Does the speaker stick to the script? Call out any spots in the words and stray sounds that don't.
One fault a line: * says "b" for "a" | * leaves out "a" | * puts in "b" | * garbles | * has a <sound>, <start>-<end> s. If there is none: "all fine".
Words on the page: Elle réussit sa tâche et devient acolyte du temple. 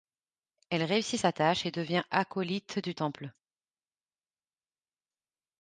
all fine